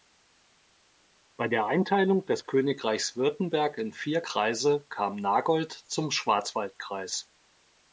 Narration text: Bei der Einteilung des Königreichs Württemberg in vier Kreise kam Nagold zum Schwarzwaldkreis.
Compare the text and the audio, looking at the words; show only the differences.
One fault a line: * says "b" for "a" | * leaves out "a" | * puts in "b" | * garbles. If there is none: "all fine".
all fine